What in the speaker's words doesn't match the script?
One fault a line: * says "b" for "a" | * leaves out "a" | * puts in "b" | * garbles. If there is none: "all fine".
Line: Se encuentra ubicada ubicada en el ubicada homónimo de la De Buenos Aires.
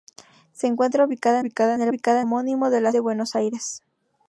all fine